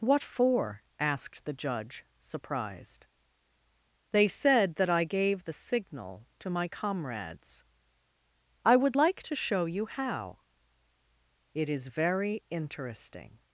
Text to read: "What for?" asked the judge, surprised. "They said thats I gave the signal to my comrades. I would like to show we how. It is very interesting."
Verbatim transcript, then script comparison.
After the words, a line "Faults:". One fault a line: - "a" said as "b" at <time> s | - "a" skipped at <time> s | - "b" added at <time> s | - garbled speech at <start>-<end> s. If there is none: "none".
"What for?" asked the judge, surprised. "They said that I gave the signal to my comrades. I would like to show you how. It is very interesting."
Faults:
- "thats" said as "that" at 4.8 s
- "we" said as "you" at 9.6 s